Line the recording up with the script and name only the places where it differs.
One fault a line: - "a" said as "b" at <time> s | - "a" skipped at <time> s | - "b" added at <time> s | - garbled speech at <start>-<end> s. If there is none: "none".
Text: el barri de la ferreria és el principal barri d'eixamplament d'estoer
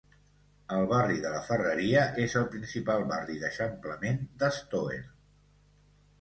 none